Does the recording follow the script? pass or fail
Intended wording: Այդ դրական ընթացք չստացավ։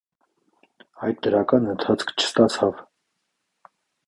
pass